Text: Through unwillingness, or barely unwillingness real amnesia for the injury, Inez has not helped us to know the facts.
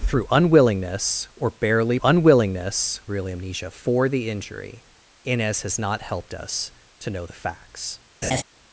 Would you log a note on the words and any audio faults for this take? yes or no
yes